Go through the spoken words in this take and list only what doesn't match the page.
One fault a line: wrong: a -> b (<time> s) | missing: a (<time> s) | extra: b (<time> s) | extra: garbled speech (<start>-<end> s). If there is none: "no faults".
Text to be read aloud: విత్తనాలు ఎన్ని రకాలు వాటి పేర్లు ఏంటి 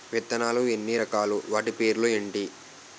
no faults